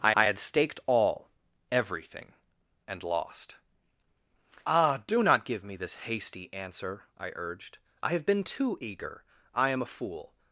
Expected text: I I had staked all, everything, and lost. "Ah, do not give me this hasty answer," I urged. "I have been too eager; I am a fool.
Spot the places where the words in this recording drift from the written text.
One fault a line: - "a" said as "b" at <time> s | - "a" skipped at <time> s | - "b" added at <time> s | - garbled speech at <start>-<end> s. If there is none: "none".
none